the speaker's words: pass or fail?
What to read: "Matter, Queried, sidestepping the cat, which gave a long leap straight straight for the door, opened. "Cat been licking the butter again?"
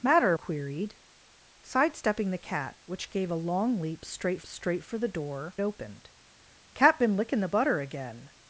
pass